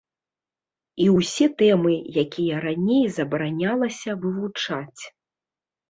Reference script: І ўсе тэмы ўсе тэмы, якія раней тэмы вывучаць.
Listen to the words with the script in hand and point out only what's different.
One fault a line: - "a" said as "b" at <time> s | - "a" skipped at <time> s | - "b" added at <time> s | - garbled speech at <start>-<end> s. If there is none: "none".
- "ўсе тэмы" skipped at 1.9 s
- "тэмы" said as "забаранялася" at 3.2 s